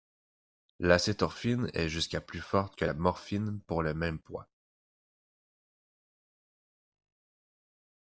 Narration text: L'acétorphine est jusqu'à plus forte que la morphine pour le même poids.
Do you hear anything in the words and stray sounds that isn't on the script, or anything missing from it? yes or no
no